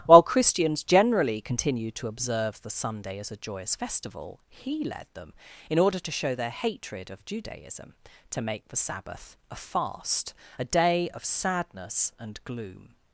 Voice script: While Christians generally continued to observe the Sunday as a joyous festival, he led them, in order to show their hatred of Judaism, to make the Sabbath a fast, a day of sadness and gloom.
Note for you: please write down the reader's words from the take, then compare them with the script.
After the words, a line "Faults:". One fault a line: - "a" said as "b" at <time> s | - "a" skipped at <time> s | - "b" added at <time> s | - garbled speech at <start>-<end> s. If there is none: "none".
While Christians generally continued to observe the Sunday as a joyous festival, he led them, in order to show their hatred of Judaism, to make the Sabbath a fast, a day of sadness and gloom.
Faults:
none